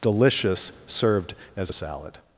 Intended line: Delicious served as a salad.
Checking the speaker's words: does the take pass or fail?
pass